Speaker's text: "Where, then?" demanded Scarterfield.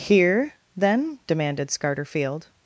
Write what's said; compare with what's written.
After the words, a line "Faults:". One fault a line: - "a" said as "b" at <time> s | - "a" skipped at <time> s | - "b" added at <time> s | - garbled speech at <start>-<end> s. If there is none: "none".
"Here, then?" demanded Scarterfield.
Faults:
- "Where" said as "Here" at 0.0 s